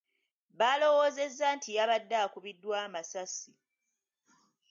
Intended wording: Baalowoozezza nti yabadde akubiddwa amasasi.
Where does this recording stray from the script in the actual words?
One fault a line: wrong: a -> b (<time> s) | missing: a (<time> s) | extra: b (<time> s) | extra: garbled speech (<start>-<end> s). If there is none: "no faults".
no faults